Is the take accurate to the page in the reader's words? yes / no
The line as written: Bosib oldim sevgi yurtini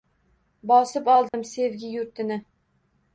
yes